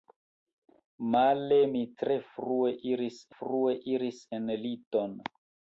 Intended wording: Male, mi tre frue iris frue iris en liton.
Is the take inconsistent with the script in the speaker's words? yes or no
no